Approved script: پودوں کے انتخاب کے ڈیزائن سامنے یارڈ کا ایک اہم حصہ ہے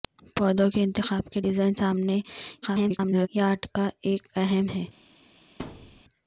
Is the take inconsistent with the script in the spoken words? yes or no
yes